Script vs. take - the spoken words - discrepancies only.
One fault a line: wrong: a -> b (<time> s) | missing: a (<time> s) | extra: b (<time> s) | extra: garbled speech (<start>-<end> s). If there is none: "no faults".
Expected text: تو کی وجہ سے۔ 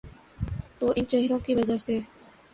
extra: ان چہروں (0.9 s)